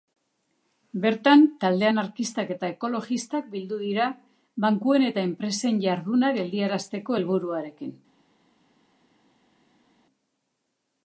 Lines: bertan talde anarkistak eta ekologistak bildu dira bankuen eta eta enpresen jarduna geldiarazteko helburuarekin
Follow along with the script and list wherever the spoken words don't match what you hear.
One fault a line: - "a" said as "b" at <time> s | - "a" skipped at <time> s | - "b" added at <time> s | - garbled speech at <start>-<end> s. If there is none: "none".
- "eta" skipped at 5.3 s